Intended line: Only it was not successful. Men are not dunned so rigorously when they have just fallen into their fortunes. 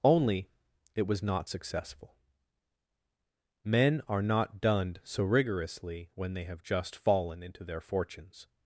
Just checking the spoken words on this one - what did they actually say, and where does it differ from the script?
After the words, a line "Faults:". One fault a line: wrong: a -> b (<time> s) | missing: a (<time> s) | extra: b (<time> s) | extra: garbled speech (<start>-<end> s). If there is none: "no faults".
Only it was not successful. Men are not dunned so rigorously when they have just fallen into their fortunes.
Faults:
no faults